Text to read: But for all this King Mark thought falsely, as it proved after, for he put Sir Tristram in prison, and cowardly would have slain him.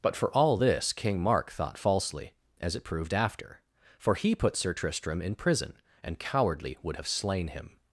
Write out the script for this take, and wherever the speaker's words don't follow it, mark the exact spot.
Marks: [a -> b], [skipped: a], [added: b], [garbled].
But for all this King Mark thought falsely, as it proved after, for he put Sir Tristram in prison, and cowardly would have slain him.